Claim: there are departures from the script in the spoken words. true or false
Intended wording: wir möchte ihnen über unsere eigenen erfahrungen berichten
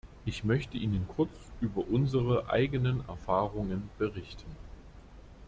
true